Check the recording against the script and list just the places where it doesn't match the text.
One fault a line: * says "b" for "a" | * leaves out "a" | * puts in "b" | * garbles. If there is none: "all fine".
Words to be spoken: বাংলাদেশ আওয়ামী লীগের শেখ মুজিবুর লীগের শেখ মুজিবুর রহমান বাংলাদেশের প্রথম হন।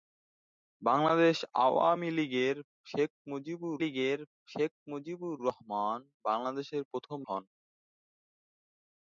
all fine